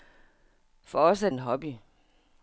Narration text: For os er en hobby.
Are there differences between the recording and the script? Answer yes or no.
no